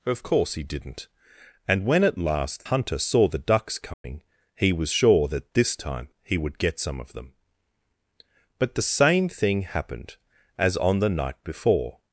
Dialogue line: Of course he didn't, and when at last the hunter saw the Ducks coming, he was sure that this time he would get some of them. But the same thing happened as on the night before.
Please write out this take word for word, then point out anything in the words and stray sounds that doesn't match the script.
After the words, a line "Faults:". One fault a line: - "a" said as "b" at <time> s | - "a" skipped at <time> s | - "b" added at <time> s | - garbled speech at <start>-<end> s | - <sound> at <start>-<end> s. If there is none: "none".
Of course he didn't, and when at last hunter saw the Ducks coming, he was sure that this time he would get some of them. But the same thing happened as on the night before.
Faults:
- "the" skipped at 2.6 s
- dropout at 3.9-4.0 s